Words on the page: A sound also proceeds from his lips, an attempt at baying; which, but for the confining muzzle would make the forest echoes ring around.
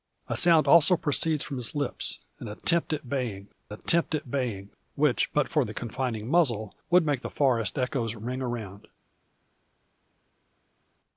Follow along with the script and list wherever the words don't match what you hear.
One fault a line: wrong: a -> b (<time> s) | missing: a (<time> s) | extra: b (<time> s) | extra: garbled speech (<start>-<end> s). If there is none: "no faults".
extra: attempt at baying (3.7 s)